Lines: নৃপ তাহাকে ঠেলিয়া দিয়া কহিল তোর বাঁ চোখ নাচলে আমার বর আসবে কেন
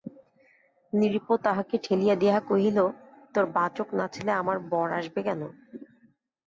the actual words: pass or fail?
pass